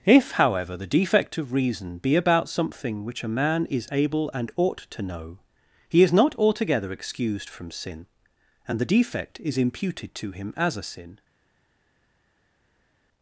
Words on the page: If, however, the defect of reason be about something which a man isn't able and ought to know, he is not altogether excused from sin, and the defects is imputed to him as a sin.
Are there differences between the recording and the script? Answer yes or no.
yes